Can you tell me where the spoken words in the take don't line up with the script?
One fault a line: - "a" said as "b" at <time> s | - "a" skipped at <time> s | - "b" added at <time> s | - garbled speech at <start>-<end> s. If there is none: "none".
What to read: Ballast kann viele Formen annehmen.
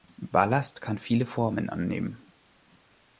none